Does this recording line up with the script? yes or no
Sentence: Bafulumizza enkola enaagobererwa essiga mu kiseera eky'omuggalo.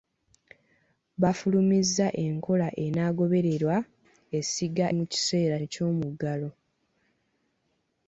yes